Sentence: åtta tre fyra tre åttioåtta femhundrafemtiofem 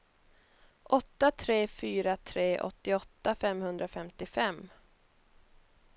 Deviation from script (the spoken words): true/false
false